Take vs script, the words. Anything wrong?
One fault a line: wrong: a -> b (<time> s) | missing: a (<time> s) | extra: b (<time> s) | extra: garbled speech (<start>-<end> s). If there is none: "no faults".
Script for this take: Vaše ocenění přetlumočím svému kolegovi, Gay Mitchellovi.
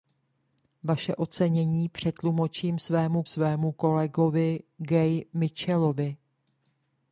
extra: svému (3.3 s)